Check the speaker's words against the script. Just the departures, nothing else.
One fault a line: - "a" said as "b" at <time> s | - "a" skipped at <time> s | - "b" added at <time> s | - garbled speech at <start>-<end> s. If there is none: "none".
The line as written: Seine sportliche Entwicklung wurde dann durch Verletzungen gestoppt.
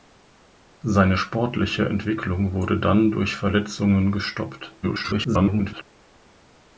- garbled speech at 4.8-5.8 s